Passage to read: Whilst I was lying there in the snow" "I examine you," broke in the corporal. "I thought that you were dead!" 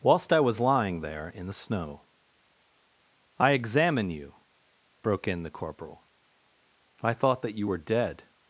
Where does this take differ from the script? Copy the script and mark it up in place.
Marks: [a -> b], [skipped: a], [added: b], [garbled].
Whilst I was lying there in the snow" "I examine you," broke in the corporal. "I thought that you were dead!"